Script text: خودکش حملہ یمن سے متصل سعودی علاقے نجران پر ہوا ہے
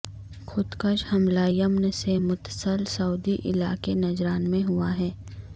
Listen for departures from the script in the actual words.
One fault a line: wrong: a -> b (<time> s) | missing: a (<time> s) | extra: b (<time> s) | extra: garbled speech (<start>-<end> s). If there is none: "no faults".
wrong: پر -> میں (4.5 s)